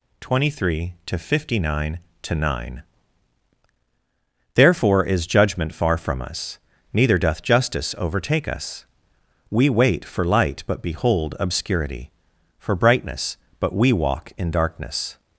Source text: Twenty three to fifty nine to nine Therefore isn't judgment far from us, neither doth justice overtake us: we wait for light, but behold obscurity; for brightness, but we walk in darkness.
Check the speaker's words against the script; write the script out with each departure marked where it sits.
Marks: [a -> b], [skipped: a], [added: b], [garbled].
Twenty three to fifty nine to nine Therefore [isn't -> is] judgment far from us, neither doth justice overtake us: we wait for light, but behold obscurity; for brightness, but we walk in darkness.